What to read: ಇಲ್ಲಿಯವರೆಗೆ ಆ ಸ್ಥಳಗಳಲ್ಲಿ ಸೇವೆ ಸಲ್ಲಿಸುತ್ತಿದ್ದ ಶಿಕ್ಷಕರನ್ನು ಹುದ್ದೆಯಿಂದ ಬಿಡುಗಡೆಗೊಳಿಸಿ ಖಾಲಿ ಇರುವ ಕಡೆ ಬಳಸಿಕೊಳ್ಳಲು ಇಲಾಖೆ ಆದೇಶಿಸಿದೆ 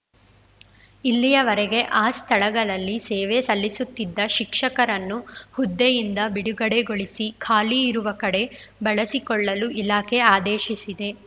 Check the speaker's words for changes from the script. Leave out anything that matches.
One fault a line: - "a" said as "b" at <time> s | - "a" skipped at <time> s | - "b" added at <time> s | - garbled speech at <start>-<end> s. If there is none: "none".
none